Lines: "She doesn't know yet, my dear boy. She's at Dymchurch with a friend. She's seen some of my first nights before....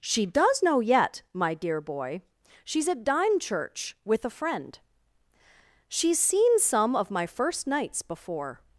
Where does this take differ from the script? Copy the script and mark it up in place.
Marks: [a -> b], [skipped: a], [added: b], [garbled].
"She [doesn't -> does] know yet, my dear boy. She's at Dymchurch with a friend. She's seen some of my first nights before....